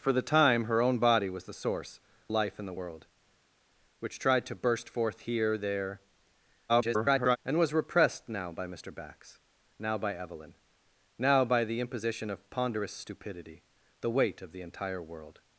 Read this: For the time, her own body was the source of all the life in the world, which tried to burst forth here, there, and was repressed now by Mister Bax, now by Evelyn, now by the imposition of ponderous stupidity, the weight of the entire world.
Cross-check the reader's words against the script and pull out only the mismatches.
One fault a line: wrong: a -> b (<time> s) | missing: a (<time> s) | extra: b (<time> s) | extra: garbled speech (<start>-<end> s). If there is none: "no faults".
missing: of all the (2.0 s)
extra: garbled speech (6.7-7.4 s)